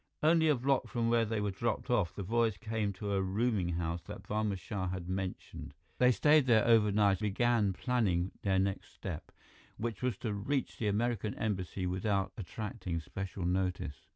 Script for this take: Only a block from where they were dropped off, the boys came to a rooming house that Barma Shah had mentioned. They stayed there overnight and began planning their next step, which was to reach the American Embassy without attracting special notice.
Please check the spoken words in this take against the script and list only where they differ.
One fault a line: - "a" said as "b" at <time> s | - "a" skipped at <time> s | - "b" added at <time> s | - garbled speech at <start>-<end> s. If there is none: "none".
- "and" skipped at 7.2 s